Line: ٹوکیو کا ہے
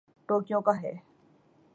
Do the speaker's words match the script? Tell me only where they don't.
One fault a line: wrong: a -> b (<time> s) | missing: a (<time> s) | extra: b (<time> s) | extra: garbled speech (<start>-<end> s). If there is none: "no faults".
no faults